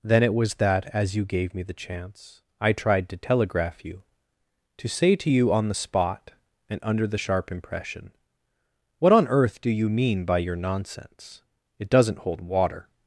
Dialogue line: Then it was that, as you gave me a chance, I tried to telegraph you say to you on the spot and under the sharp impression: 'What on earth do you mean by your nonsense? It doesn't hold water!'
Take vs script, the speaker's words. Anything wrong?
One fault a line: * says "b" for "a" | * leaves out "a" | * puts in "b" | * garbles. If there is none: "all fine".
* says "the" for "a"
* puts in "to"